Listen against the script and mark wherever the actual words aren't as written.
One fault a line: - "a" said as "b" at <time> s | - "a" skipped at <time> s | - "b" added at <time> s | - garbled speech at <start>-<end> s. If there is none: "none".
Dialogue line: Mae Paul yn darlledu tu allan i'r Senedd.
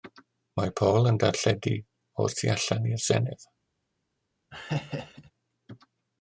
- "o'r" added at 2.2 s